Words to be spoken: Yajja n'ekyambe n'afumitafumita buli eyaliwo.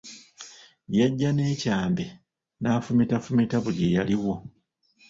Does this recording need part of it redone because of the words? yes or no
no